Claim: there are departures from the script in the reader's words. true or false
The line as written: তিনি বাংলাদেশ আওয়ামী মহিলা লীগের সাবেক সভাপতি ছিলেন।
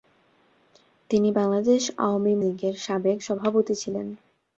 true